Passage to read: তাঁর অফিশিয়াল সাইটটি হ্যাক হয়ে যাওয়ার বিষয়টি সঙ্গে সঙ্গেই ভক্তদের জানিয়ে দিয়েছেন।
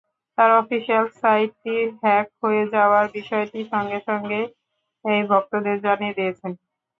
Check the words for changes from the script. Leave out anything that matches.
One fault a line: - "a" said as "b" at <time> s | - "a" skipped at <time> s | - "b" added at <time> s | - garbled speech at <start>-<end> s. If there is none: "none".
none